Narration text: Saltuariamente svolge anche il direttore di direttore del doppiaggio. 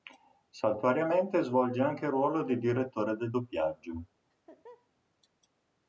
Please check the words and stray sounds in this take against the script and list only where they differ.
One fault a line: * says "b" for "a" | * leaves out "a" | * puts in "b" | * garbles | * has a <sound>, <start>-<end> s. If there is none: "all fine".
* says "ruolo" for "direttore"
* has a laugh, 4.3-4.9 s